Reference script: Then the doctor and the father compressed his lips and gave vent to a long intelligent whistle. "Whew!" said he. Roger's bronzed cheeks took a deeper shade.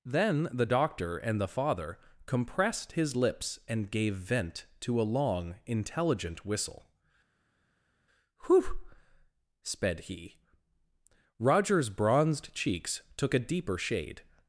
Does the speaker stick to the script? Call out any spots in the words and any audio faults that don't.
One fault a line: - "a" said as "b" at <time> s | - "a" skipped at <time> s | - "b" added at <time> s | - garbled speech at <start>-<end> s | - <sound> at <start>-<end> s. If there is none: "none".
- "said" said as "sped" at 9.6 s